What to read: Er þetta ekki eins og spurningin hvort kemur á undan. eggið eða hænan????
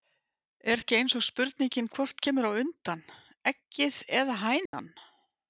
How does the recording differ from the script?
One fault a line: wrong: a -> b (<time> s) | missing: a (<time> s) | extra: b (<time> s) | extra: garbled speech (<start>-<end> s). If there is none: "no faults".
missing: þetta (0.8 s)